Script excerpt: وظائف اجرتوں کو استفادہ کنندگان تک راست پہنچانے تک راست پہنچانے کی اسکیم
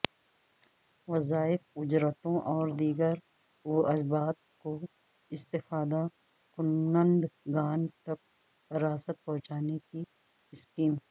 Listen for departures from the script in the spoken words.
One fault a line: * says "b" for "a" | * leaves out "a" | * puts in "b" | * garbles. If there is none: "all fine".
* puts in "اور دیگر واجبات"
* leaves out "تک راست پہنچانے"